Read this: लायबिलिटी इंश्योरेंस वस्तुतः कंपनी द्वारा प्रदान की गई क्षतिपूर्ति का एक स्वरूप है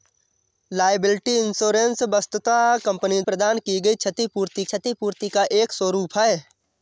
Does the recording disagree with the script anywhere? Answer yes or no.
yes